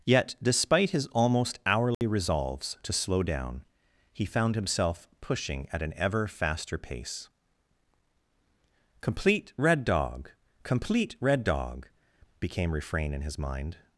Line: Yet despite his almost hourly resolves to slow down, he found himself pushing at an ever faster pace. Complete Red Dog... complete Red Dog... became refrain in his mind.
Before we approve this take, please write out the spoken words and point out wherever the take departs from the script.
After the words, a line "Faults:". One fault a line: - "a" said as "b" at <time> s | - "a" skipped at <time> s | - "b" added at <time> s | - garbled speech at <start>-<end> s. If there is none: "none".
Yet despite his almost hourly resolves to slow down, he found himself pushing at an ever faster pace. Complete Red Dog... complete Red Dog... became refrain in his mind.
Faults:
none